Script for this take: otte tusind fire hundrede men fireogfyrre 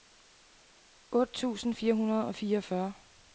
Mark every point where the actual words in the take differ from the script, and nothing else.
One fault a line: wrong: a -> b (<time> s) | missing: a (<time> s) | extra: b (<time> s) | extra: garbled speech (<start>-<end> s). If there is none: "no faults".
wrong: men -> og (2.2 s)